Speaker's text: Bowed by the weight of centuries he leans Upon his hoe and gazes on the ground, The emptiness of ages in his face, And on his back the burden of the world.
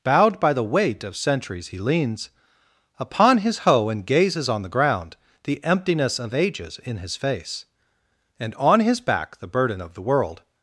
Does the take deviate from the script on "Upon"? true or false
false